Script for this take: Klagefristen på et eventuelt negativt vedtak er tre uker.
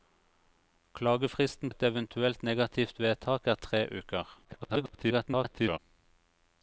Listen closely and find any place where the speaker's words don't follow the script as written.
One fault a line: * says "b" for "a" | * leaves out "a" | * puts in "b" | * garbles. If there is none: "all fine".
* leaves out "på"
* garbles